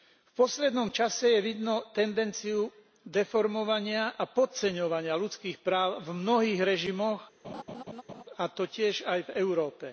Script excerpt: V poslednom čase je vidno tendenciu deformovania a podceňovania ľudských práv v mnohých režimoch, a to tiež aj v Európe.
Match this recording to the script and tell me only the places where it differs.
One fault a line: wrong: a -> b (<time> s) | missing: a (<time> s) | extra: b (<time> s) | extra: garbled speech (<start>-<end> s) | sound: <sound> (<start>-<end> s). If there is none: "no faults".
sound: laugh (7.4-8.2 s)